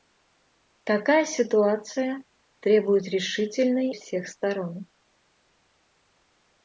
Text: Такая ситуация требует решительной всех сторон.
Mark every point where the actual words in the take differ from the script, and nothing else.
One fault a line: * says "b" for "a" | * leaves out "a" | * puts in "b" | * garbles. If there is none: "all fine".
all fine